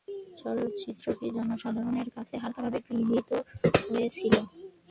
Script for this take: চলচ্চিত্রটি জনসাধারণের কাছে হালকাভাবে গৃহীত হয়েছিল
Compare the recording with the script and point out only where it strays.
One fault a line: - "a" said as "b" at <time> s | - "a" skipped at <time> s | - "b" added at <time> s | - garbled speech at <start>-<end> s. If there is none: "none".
none